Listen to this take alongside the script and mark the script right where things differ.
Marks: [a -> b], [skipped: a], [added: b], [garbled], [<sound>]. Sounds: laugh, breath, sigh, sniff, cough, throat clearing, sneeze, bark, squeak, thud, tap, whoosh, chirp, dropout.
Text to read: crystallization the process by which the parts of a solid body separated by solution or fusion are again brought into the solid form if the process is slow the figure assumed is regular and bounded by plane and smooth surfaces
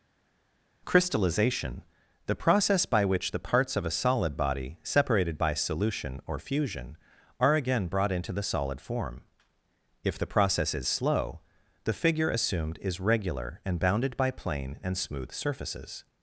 crystallization the process by which the parts of a solid body separated by solution or fusion are again brought into the solid form if the process is slow the figure assumed is regular and bounded by plane and smooth surfaces